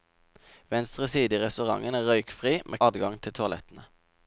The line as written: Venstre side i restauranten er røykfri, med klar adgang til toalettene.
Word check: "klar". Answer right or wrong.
wrong